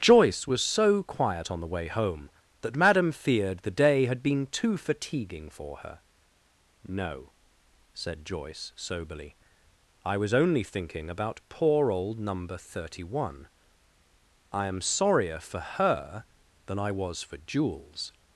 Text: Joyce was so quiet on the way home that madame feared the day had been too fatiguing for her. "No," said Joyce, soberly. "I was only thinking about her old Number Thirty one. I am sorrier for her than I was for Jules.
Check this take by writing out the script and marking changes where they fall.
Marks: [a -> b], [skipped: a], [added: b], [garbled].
Joyce was so quiet on the way home that madame feared the day had been too fatiguing for her. "No," said Joyce, soberly. "I was only thinking about [her -> poor] old Number Thirty one. I am sorrier for her than I was for Jules.